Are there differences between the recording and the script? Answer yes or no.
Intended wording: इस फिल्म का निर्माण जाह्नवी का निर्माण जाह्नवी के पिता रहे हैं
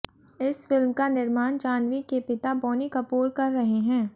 yes